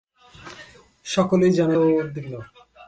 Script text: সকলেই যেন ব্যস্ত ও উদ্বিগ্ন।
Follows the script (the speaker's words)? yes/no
no